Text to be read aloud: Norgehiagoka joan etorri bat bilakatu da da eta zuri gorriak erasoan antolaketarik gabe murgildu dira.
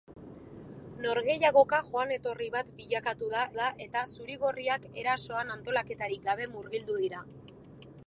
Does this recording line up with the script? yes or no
yes